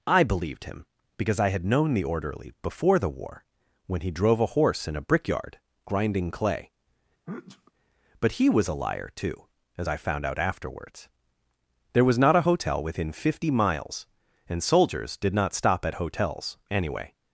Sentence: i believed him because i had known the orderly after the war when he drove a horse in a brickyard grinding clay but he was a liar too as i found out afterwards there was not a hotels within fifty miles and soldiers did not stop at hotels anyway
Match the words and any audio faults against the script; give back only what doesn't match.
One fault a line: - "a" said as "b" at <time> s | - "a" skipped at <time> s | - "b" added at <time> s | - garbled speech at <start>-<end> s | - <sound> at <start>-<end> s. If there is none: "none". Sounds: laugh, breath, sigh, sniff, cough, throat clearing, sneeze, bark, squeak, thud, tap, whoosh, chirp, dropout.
- "after" said as "before" at 2.6 s
- sneeze at 7.3-7.7 s
- "hotels" said as "hotel" at 12.5 s